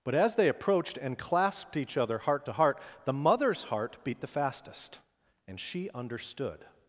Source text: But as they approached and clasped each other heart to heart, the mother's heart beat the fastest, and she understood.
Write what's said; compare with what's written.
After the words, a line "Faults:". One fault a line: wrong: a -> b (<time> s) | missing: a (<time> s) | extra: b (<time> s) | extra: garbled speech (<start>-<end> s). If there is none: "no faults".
But as they approached and clasped each other heart to heart, the mother's heart beat the fastest, and she understood.
Faults:
no faults